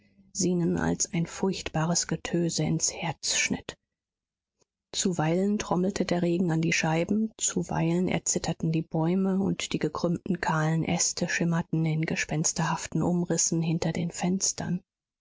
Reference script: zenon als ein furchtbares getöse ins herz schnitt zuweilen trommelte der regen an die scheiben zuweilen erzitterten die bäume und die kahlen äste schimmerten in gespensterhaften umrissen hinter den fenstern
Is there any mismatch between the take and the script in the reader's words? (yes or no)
yes